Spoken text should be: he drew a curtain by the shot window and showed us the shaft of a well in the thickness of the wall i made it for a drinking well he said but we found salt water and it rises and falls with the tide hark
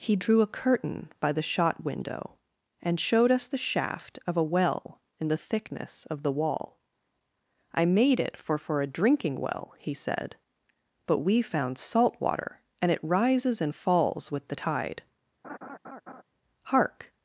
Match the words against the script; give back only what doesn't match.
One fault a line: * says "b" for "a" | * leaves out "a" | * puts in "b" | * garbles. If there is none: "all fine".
* puts in "for"